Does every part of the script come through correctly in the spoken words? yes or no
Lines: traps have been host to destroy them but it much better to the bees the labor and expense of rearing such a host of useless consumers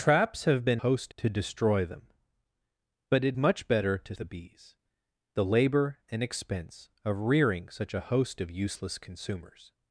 yes